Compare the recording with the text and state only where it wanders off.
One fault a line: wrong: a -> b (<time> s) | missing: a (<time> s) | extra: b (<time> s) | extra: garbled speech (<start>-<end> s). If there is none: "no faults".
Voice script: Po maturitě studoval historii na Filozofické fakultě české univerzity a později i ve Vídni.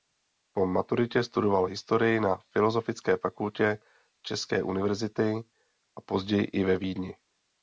no faults